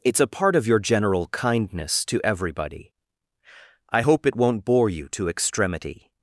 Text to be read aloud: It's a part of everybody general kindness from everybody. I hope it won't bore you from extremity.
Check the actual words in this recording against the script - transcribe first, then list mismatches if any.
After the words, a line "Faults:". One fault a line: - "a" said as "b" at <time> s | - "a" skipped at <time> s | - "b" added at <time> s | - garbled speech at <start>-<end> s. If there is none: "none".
It's a part of your general kindness to everybody. I hope it won't bore you to extremity.
Faults:
- "everybody" said as "your" at 0.7 s
- "from" said as "to" at 2.0 s
- "from" said as "to" at 5.1 s